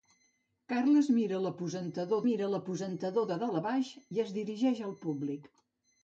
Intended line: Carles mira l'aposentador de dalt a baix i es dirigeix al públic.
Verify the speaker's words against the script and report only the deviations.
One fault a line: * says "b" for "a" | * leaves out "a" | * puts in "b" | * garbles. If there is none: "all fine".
* puts in "mira l'aposentador"